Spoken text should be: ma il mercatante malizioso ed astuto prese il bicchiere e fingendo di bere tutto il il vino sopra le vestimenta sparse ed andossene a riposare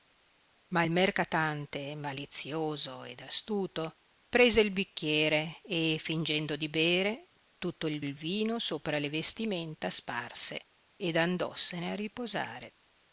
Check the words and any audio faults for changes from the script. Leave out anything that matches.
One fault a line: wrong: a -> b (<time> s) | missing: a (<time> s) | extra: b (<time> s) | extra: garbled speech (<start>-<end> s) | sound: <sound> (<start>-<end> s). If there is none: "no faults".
no faults